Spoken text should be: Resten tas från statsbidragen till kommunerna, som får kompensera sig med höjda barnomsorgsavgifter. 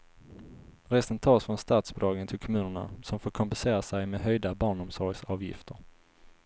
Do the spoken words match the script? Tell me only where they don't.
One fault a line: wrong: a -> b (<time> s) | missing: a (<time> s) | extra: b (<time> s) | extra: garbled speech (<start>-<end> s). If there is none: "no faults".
no faults